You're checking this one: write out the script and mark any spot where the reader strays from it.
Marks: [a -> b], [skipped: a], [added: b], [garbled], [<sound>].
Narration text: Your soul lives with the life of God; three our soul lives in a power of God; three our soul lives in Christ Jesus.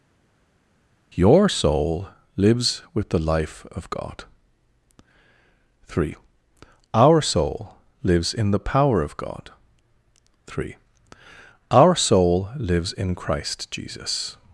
Your soul lives with the life of God; three our soul lives in [a -> the] power of God; three our soul lives in Christ Jesus.